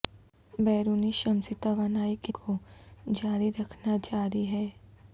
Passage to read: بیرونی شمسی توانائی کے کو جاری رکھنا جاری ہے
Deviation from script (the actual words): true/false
false